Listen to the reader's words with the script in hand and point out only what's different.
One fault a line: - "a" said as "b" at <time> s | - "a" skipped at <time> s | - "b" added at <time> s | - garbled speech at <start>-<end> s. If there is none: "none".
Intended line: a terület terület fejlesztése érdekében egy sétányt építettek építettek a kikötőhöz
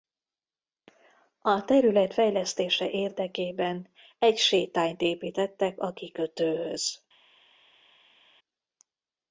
- "terület" skipped at 2.1 s
- "építettek" skipped at 5.8 s